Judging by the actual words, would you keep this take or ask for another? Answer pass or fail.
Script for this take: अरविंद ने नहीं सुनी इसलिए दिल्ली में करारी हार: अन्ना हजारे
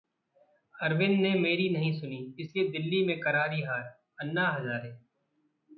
fail